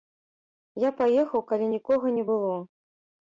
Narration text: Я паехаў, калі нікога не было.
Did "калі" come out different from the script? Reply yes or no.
no